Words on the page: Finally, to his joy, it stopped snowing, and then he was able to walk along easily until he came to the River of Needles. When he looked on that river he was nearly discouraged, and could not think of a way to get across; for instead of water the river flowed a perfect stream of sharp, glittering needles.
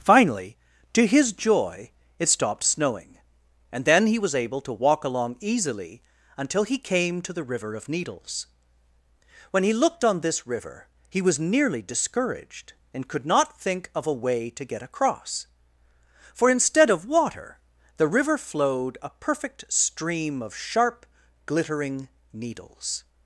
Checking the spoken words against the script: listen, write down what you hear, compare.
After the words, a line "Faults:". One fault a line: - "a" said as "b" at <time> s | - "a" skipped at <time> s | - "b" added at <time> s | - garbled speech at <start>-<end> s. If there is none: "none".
Finally, to his joy, it stopped snowing, and then he was able to walk along easily until he came to the River of Needles. When he looked on this river he was nearly discouraged, and could not think of a way to get across; for instead of water the river flowed a perfect stream of sharp, glittering needles.
Faults:
- "that" said as "this" at 10.2 s